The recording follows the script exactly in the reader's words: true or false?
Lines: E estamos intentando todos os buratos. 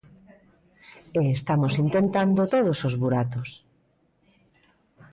true